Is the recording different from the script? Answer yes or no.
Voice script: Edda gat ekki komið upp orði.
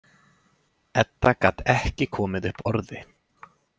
no